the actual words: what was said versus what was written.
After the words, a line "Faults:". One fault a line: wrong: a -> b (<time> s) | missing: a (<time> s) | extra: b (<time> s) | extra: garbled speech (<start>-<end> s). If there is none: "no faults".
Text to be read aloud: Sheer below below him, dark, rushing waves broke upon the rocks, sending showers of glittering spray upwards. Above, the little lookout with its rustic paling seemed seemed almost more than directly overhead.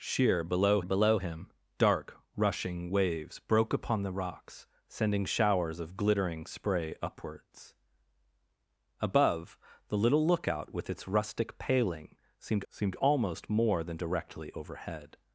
Sheer below below him, dark, rushing waves broke upon the rocks, sending showers of glittering spray upwards. Above, the little lookout with its rustic paling seemed seemed almost more than directly overhead.
Faults:
no faults